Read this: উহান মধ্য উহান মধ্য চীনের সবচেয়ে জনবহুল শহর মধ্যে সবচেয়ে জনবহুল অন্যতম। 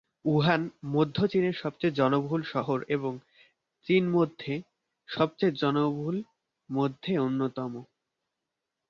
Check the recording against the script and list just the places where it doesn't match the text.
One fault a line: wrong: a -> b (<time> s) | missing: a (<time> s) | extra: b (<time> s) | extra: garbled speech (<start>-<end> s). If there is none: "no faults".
missing: উহান মধ্য (1.2 s)
extra: এবং চীন (2.9 s)
extra: মধ্যে (6.7 s)